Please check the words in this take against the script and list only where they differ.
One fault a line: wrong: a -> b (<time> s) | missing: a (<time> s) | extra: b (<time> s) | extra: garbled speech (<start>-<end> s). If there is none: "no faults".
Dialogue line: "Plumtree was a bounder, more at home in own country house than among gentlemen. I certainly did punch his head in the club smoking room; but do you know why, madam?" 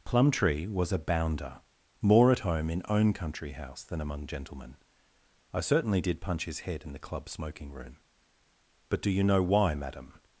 no faults